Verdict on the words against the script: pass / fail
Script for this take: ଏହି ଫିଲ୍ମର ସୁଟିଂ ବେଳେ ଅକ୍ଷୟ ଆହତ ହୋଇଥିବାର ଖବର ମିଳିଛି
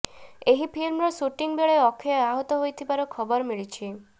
pass